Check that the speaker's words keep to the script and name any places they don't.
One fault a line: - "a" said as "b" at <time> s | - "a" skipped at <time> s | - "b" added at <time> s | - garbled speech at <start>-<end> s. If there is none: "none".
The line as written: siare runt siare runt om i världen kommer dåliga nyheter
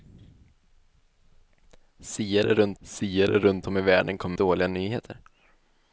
none